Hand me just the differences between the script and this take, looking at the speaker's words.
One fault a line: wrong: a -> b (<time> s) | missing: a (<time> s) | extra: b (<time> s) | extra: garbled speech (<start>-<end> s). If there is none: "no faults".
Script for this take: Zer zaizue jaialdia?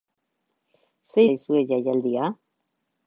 no faults